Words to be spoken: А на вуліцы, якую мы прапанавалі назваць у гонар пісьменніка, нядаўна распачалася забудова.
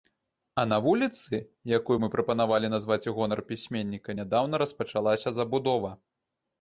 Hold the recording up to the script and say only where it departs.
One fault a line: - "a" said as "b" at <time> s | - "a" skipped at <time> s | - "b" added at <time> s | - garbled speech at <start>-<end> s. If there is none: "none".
none